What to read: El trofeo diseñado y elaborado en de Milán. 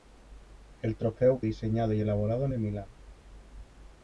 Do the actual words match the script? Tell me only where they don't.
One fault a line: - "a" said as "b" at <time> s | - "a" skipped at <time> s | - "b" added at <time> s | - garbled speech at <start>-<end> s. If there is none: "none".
none